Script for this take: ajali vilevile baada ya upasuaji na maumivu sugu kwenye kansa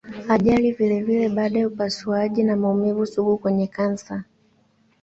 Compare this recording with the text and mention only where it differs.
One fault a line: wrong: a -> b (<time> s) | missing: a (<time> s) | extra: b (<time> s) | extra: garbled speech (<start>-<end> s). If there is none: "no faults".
no faults